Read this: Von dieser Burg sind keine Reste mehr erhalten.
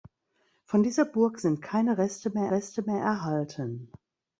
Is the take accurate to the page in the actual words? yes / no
no